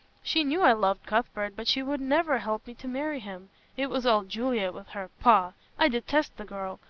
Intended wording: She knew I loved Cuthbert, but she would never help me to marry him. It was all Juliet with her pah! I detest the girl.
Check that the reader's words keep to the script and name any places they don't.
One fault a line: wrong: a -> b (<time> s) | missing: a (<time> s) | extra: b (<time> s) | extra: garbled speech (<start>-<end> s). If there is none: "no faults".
no faults